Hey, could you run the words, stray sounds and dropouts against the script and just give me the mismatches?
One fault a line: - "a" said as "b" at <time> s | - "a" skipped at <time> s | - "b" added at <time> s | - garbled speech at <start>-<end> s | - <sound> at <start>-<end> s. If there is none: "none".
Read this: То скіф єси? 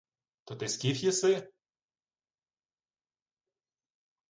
- "ти" added at 0.6 s